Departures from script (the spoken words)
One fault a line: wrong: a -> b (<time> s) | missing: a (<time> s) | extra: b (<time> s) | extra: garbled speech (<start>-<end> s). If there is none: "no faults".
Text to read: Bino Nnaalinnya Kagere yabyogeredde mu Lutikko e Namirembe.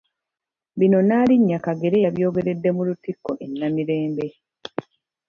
no faults